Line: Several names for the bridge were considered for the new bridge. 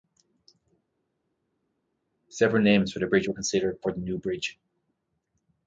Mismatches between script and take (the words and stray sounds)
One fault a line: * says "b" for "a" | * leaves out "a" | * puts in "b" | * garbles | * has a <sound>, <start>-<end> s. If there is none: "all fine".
all fine